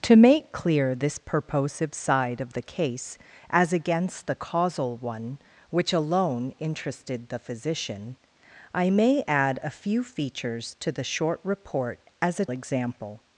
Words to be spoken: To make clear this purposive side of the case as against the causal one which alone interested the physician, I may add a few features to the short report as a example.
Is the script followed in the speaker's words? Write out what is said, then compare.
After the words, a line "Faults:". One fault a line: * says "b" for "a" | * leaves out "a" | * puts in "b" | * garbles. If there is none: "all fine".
To make clear this purposive side of the case as against the causal one which alone interested the physician, I may add a few features to the short report as a example.
Faults:
all fine